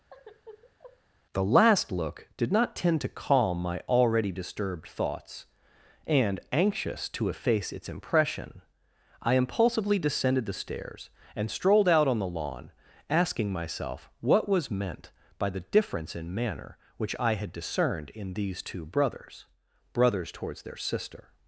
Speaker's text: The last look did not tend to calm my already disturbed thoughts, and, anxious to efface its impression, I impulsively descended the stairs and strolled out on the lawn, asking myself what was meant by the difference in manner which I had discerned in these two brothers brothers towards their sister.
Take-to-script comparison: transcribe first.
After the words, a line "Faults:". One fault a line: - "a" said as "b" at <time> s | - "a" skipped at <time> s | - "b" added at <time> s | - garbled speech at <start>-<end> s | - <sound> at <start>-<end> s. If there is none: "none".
The last look did not tend to calm my already disturbed thoughts, and, anxious to efface its impression, I impulsively descended the stairs and strolled out on the lawn, asking myself what was meant by the difference in manner which I had discerned in these two brothers brothers towards their sister.
Faults:
- sigh at 0.1-1.0 s